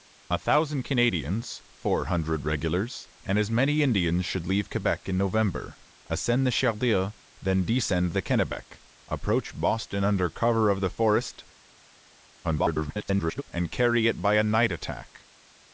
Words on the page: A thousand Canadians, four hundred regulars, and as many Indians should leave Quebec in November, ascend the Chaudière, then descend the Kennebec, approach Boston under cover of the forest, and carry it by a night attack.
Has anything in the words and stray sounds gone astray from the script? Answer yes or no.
yes